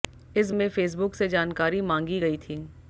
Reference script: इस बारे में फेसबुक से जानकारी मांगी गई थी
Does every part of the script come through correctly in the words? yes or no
no